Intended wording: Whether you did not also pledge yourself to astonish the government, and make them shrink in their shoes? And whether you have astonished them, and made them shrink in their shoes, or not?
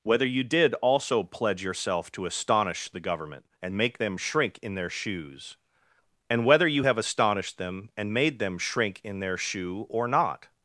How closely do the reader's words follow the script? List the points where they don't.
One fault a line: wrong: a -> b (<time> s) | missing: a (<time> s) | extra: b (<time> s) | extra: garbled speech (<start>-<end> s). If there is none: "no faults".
missing: not (0.7 s)
wrong: shoes -> shoe (9.4 s)